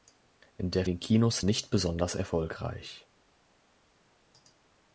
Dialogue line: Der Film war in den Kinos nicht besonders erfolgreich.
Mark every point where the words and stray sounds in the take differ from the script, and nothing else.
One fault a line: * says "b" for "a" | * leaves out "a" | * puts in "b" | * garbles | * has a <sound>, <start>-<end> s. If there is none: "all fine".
* leaves out "Film war in"